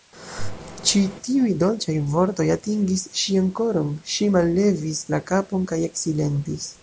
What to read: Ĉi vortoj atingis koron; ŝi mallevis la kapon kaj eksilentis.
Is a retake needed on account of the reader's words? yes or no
yes